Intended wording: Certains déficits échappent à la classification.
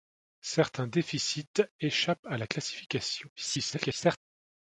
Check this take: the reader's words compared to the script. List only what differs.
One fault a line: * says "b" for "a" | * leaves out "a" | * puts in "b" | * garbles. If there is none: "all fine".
* garbles